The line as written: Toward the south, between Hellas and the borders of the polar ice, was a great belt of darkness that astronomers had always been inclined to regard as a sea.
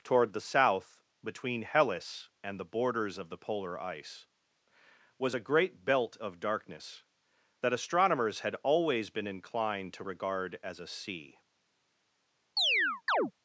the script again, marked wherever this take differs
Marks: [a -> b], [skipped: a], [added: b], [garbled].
Toward the south, between Hellas and the borders of the polar ice, was a great belt of darkness that astronomers had always been inclined to regard as a sea.